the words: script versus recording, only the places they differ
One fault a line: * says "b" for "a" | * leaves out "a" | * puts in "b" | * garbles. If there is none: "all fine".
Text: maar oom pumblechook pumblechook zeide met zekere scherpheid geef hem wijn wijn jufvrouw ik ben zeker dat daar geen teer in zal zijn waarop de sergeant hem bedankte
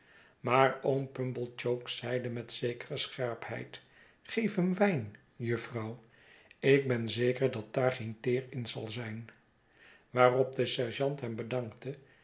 * leaves out "pumblechook"
* leaves out "wijn"